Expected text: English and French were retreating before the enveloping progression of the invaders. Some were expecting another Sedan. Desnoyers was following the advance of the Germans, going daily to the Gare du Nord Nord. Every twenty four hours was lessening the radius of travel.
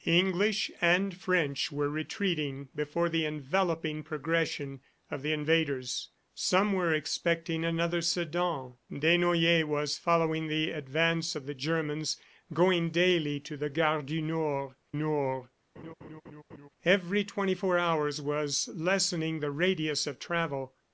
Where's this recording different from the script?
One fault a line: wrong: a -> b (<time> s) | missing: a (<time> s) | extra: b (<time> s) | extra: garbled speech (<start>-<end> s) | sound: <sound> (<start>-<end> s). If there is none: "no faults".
sound: laugh (15.8-16.7 s)